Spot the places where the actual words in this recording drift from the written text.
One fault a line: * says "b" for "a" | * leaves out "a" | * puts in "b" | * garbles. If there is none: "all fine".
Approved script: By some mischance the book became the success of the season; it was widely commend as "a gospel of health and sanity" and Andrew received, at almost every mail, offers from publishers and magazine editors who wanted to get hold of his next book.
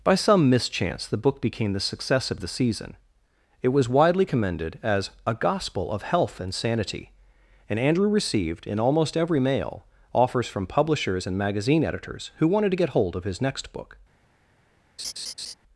* says "commended" for "commend"
* says "in" for "at"